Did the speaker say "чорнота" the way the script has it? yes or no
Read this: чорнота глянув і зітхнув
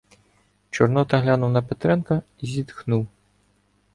yes